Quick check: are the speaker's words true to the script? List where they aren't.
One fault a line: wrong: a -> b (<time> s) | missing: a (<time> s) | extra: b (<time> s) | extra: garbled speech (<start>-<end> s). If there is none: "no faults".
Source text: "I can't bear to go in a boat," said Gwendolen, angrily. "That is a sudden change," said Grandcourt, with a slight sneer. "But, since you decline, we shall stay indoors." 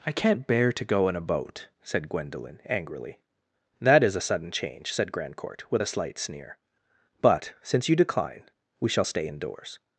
no faults